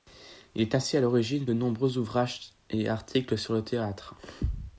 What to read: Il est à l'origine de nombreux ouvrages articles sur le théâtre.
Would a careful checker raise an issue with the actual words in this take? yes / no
yes